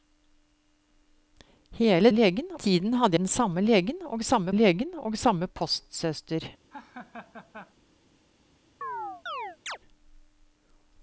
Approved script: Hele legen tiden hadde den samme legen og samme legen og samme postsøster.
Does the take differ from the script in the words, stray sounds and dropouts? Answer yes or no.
yes